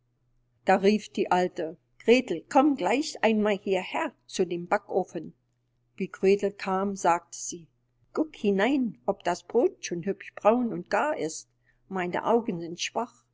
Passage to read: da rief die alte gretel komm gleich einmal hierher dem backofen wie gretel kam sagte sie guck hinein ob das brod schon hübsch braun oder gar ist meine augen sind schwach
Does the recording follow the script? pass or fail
fail